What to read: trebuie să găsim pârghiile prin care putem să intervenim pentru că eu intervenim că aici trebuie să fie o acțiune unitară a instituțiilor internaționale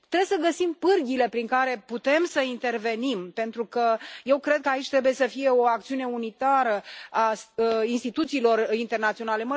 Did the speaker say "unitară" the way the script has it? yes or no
yes